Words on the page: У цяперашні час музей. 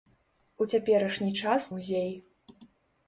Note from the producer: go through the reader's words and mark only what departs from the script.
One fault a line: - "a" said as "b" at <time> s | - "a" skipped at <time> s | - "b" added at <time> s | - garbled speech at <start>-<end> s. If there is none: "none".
none